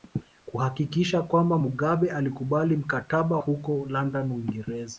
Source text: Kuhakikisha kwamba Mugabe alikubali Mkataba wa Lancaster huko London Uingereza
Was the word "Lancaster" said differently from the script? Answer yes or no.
yes